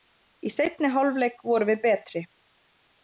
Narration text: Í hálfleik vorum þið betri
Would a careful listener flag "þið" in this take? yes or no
yes